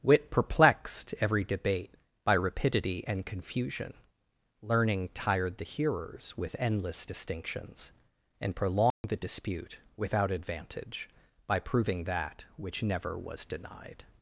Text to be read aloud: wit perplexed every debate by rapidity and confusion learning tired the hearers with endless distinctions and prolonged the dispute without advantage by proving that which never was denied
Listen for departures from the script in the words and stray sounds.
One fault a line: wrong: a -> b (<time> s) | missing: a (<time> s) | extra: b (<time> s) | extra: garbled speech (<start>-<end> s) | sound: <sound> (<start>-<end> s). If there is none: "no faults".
sound: dropout (8.9-9.0 s)